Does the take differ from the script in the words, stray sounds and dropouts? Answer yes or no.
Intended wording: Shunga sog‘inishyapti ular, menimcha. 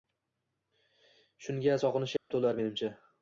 yes